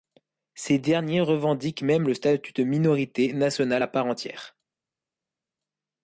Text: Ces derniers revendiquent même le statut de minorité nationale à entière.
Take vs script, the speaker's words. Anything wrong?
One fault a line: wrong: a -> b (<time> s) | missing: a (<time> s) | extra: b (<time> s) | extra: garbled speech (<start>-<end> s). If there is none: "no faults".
extra: part (3.9 s)